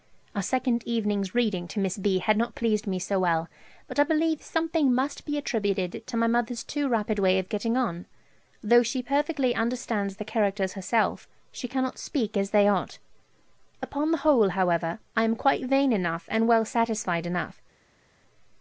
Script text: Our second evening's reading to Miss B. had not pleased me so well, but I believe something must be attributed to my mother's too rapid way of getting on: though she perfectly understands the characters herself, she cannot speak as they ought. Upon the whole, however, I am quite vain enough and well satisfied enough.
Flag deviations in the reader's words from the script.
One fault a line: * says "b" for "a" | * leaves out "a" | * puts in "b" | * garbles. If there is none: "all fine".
all fine